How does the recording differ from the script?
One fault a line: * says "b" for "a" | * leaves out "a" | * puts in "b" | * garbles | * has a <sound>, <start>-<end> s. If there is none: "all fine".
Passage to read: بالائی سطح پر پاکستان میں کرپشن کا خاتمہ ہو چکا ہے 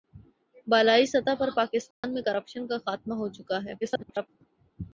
* has a dropout, 1.9-2.0 s
* garbles